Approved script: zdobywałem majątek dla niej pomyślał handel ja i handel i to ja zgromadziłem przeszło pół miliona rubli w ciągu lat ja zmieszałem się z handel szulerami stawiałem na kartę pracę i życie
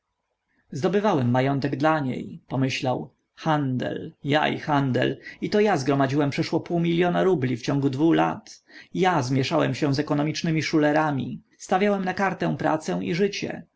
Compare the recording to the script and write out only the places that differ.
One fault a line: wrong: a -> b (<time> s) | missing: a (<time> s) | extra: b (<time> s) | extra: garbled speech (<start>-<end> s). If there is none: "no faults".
extra: dwu (7.9 s)
wrong: handel -> ekonomicznymi (10.0 s)